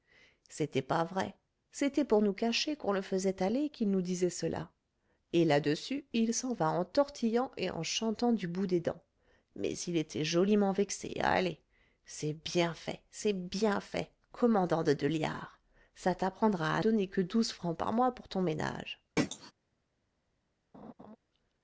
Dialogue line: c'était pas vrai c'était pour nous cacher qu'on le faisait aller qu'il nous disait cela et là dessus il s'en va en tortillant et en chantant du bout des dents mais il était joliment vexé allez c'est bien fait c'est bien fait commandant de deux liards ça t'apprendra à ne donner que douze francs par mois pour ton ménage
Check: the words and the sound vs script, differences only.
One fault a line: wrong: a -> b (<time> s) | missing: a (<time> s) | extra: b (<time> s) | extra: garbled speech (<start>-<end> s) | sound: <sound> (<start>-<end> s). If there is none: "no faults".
missing: ne (16.8 s)
sound: throat clearing (19.2-19.5 s)
sound: laugh (20.7-21.2 s)